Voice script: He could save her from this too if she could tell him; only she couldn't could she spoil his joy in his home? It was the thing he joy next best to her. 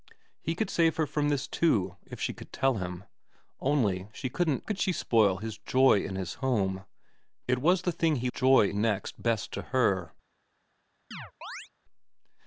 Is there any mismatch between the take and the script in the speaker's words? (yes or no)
no